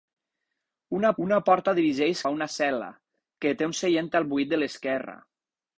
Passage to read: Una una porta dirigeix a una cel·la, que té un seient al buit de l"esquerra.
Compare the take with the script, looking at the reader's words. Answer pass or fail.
pass